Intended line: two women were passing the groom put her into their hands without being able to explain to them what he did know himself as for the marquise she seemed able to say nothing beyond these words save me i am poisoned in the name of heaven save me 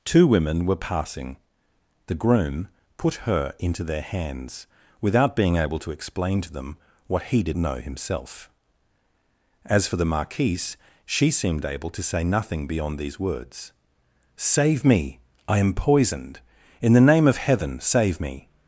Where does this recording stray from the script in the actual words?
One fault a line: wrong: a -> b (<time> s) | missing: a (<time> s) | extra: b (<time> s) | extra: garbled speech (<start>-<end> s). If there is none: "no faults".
no faults